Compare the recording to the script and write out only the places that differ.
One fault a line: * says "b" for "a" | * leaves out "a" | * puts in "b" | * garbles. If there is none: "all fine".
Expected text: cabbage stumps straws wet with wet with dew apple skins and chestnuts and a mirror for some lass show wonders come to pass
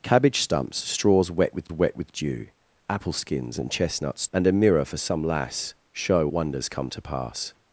all fine